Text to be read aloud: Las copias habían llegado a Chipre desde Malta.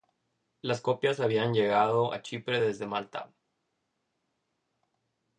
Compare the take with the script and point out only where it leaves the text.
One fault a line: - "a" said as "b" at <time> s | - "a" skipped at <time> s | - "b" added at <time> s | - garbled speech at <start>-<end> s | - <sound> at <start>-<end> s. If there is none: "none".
none